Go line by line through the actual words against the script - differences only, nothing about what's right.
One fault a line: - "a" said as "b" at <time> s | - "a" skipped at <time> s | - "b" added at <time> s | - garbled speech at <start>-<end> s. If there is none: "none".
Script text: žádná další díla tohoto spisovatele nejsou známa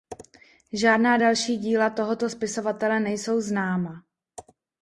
none